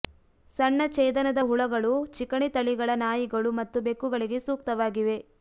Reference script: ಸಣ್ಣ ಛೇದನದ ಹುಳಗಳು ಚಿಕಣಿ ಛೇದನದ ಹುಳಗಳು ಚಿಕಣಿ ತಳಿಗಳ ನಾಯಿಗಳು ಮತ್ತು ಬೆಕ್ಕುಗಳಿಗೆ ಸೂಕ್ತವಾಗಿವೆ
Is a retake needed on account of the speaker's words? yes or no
yes